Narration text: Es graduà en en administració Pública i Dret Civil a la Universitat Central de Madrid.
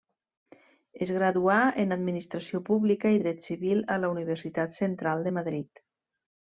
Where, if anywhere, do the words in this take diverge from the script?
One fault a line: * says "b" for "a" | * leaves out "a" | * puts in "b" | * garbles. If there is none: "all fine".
* leaves out "en"